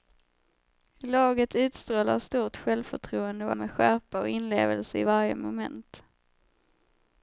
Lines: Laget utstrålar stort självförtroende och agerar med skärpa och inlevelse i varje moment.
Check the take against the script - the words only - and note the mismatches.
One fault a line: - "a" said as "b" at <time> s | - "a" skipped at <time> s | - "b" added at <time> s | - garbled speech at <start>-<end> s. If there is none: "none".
- "agerar" skipped at 3.5 s